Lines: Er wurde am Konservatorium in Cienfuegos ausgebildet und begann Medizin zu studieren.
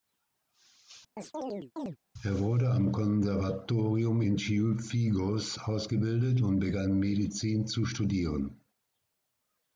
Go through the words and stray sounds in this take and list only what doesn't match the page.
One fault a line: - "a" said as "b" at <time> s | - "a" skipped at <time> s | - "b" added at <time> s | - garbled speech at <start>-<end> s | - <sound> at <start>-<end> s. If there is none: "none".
- chirp at 1.2-2.0 s